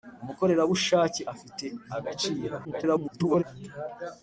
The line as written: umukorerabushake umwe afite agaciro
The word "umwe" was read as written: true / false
false